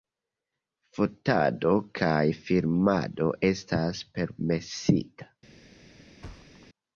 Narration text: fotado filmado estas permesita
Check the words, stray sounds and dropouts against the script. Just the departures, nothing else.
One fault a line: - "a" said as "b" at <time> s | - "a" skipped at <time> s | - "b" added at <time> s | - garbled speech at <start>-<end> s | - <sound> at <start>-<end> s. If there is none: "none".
- "kaj" added at 2.0 s
- thud at 6.2-6.7 s